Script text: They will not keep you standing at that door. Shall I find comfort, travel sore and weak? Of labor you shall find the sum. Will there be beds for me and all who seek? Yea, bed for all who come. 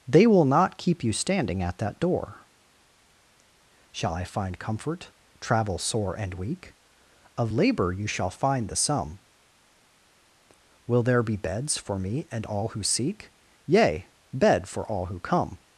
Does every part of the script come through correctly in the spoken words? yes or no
yes